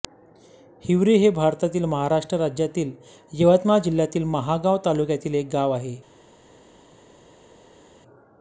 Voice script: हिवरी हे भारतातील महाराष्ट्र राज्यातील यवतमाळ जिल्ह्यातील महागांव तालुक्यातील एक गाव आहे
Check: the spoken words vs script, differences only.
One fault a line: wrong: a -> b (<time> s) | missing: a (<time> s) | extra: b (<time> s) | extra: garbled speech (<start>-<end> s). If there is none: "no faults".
no faults